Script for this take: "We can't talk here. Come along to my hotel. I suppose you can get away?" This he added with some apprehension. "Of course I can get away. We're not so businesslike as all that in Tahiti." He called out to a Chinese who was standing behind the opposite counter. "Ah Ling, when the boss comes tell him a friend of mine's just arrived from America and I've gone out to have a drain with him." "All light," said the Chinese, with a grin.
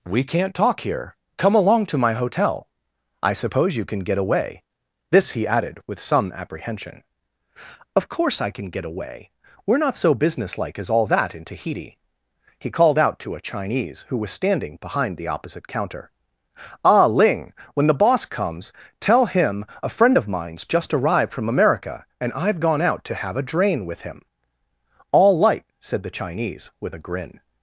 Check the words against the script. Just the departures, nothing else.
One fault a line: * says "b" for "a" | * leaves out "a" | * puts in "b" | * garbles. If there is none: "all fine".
all fine